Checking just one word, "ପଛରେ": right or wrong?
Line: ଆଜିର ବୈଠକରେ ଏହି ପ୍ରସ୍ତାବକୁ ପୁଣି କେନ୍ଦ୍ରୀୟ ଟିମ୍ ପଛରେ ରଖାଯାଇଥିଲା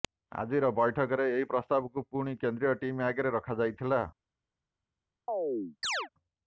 wrong